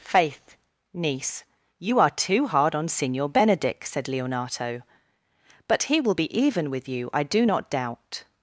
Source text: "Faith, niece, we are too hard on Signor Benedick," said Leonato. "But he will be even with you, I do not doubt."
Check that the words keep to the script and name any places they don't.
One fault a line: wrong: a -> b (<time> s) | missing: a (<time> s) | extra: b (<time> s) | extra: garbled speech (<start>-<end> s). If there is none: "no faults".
wrong: we -> you (1.8 s)